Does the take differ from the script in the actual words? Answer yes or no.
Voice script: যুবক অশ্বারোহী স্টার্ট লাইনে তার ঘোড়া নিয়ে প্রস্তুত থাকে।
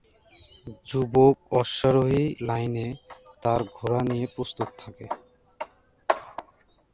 yes